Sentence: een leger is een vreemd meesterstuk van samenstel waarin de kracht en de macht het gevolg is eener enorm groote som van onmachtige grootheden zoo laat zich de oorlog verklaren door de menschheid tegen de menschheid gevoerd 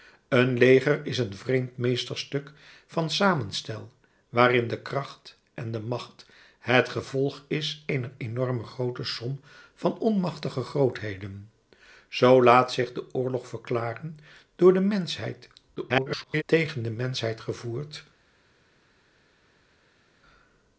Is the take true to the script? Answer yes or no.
no